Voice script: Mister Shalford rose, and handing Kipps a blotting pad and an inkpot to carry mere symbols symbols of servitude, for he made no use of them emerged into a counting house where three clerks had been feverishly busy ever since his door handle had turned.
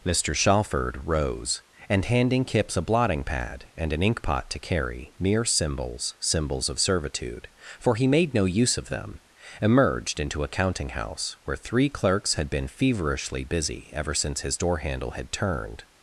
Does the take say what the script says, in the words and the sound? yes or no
yes